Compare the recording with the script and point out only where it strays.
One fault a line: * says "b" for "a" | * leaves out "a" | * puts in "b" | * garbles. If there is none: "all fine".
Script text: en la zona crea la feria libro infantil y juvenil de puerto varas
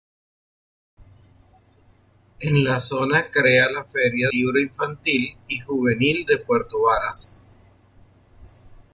all fine